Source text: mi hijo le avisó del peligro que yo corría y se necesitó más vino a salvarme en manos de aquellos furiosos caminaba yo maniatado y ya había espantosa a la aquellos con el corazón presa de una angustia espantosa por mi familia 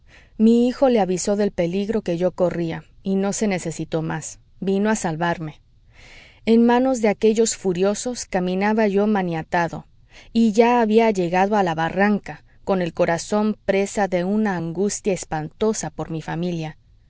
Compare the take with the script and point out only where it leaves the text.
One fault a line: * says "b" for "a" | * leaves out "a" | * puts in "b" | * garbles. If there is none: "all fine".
* puts in "no"
* says "llegado" for "espantosa"
* says "barranca" for "aquellos"